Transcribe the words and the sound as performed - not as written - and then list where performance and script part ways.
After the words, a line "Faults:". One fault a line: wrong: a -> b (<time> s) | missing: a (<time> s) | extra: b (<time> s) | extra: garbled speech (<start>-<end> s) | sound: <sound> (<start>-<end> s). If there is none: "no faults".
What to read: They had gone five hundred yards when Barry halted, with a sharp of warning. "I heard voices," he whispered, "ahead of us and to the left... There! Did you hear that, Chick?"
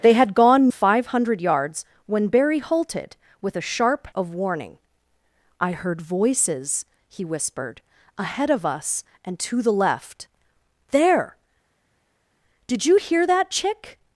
They had gone five hundred yards when Barry halted, with a sharp of warning. "I heard voices," he whispered, "ahead of us and to the left... There! Did you hear that, Chick?"
Faults:
no faults